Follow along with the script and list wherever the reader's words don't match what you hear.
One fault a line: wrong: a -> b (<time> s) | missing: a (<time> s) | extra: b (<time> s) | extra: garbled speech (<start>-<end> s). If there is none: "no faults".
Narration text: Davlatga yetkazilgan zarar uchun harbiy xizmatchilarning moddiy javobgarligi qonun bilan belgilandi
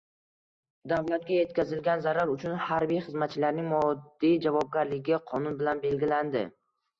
no faults